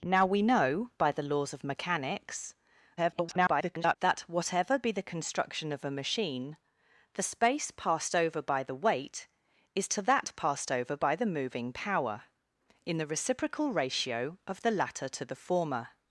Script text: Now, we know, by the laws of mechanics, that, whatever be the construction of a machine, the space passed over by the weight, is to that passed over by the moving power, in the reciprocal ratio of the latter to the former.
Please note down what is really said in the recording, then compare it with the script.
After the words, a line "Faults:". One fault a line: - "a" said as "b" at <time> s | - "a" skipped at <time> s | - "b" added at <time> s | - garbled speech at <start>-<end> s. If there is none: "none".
Now, we know, by the laws of mechanics, [garbled] that, whatever be the construction of a machine, the space passed over by the weight, is to that passed over by the moving power, in the reciprocal ratio of the latter to the former.
Faults:
- garbled speech at 3.0-4.0 s